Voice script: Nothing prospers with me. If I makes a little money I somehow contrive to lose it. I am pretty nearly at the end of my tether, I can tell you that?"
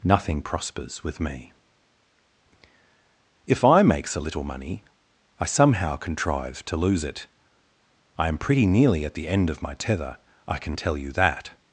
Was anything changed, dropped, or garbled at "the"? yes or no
no